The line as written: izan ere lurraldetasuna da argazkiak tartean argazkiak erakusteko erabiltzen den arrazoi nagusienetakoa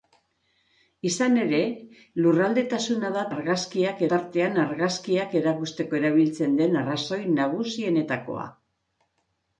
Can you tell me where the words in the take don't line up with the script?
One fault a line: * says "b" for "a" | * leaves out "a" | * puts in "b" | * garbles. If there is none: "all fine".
all fine